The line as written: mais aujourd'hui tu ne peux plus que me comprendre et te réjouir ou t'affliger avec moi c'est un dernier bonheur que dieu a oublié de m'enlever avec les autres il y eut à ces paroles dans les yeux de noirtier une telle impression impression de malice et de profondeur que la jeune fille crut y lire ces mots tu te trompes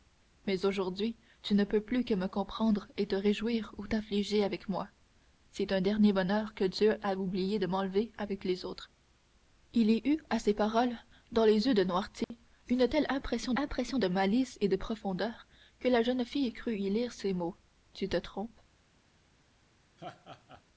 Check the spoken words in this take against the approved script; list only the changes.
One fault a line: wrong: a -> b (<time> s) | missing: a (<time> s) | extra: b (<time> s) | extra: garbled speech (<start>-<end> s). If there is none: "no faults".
no faults